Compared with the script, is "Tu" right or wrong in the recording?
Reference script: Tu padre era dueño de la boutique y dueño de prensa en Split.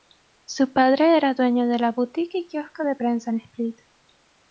wrong